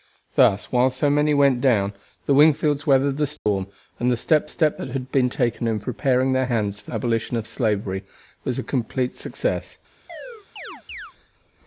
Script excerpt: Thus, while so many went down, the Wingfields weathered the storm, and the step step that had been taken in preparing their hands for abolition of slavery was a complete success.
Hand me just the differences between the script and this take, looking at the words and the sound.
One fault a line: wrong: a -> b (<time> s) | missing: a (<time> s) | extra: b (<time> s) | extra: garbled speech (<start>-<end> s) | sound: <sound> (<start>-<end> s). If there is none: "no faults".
sound: dropout (3.4-3.5 s)
sound: chirp (10.1-11.1 s)